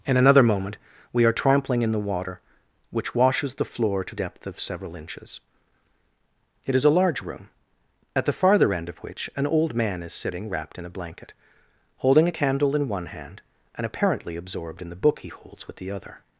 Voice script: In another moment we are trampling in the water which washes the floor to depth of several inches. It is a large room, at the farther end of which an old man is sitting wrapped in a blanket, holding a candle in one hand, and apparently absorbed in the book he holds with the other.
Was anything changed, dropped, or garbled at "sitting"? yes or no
no